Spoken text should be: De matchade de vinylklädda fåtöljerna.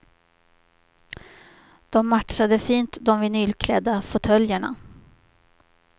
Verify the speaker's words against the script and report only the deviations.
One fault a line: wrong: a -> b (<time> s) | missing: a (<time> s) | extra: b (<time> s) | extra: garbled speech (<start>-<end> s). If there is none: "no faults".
extra: fint (2.6 s)